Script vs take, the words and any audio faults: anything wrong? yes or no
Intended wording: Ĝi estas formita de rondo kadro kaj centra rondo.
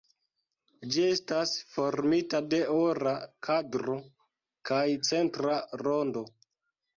yes